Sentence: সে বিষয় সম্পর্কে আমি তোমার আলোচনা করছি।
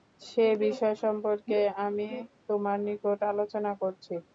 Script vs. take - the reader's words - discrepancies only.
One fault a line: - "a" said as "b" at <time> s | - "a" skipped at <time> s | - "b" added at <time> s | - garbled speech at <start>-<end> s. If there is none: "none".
- "নিকট" added at 2.9 s